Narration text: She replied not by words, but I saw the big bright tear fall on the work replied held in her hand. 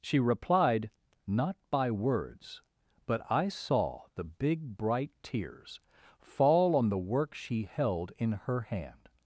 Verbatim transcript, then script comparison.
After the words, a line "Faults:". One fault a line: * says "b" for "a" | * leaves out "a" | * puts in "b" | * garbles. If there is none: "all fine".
She replied not by words, but I saw the big bright tears fall on the work she held in her hand.
Faults:
* says "tears" for "tear"
* says "she" for "replied"